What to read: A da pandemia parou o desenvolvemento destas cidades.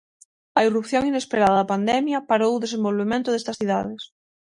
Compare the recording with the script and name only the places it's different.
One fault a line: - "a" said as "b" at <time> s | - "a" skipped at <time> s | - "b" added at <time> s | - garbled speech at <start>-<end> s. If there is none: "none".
- "irrupción inesperada" added at 0.7 s